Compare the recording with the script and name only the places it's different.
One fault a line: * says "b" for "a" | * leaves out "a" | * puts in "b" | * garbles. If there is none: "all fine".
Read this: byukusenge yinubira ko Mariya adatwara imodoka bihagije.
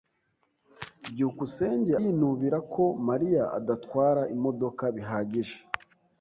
all fine